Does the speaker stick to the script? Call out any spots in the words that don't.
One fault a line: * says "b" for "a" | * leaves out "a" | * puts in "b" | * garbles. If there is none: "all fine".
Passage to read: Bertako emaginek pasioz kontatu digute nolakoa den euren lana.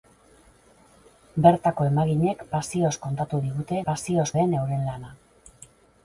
* says "pasioz" for "nolakoa"